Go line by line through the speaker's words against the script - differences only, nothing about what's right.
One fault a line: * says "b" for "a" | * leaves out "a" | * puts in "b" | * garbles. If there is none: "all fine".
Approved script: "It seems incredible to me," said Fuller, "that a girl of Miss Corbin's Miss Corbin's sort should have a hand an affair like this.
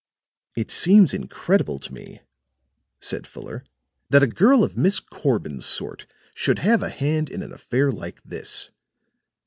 * leaves out "Miss Corbin's"
* puts in "in"